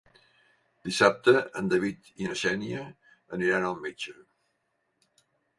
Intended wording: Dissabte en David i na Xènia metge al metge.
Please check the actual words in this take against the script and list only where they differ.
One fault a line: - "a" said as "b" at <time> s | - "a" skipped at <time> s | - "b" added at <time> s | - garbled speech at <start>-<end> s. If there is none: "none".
- "metge" said as "aniran" at 3.4 s